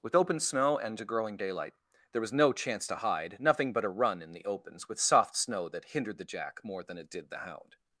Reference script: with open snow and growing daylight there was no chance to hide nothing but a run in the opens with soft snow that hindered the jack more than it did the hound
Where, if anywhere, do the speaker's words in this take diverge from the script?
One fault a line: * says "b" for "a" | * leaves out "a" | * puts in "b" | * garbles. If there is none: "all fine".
all fine